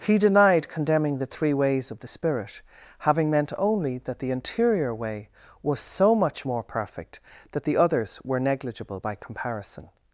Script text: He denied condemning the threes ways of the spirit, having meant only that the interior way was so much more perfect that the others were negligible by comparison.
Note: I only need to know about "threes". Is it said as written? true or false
false